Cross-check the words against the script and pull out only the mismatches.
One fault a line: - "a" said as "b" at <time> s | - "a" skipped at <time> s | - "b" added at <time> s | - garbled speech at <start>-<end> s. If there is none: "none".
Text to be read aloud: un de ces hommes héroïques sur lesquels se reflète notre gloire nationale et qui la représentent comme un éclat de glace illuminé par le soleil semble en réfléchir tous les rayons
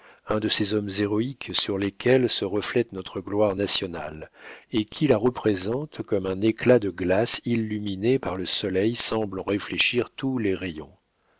none